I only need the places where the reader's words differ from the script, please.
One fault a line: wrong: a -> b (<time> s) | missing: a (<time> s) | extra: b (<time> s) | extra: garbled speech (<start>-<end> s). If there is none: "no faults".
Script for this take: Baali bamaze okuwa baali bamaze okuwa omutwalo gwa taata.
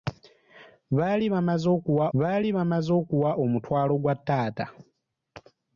no faults